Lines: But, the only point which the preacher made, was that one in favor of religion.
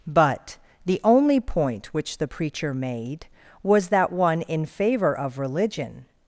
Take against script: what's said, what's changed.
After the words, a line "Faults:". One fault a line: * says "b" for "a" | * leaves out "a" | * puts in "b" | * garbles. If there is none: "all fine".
But, the only point which the preacher made, was that one in favor of religion.
Faults:
all fine